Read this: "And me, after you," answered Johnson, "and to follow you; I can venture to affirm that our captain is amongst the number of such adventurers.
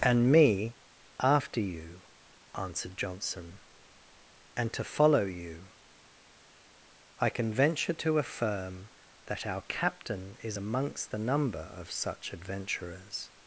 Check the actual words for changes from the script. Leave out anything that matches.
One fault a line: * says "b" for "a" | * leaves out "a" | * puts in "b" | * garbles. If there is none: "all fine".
all fine